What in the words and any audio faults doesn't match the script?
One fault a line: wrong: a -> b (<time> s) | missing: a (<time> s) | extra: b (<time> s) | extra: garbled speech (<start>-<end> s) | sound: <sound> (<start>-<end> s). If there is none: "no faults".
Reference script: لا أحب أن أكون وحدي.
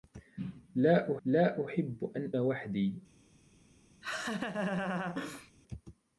extra: لا (1.2 s)
missing: أكون (2.3 s)
sound: laugh (4.0-5.5 s)